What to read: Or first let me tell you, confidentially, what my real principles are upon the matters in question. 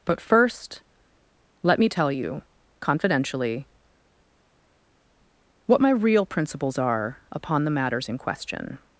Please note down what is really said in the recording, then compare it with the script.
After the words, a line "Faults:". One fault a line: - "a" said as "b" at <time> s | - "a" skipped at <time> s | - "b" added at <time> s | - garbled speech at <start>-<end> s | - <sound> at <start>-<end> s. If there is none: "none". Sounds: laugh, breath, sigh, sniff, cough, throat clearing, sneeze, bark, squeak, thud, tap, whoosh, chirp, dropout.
But first let me tell you, confidentially, what my real principles are upon the matters in question.
Faults:
- "Or" said as "But" at 0.0 s